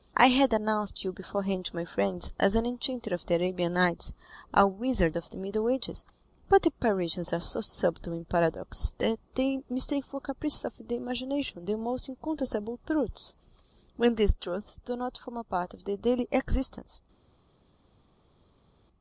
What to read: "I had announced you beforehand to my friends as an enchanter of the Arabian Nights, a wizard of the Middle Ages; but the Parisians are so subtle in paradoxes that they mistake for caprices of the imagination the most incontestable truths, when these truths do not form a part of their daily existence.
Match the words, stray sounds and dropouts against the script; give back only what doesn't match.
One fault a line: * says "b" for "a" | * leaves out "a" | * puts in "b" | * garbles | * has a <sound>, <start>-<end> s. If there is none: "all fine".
all fine